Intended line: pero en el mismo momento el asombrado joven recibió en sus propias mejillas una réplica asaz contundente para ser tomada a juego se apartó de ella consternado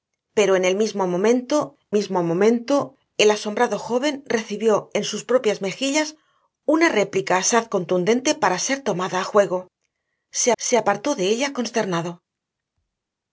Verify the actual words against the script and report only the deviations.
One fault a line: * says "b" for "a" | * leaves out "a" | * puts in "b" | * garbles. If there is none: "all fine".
* puts in "mismo momento"
* puts in "se"